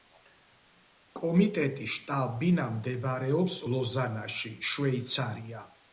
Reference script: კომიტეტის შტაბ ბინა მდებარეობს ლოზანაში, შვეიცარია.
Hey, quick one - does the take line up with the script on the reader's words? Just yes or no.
yes